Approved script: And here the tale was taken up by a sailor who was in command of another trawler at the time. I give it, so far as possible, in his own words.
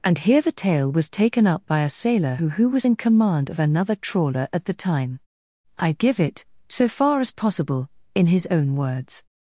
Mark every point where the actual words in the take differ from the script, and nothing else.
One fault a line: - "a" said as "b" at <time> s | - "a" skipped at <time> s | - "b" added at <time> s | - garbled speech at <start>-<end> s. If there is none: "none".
- "who" added at 2.5 s